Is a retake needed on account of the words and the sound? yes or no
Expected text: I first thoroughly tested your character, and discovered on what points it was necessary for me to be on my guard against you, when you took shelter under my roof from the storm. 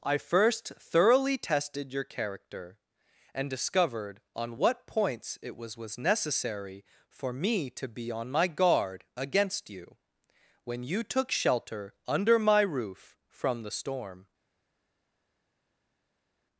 yes